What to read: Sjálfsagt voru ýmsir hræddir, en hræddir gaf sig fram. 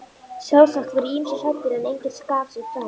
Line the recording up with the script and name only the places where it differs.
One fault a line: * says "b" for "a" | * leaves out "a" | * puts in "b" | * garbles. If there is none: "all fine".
* says "enginn" for "hræddir"